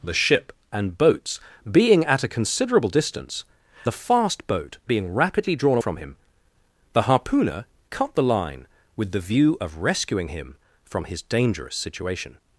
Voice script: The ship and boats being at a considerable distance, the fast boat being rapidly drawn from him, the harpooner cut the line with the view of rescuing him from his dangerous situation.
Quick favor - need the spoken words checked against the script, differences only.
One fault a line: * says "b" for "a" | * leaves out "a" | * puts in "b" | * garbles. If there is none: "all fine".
all fine